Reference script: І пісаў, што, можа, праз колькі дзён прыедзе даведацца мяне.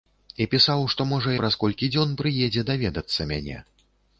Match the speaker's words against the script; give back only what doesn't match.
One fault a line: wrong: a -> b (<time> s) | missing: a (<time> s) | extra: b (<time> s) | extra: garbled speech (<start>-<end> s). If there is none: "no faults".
no faults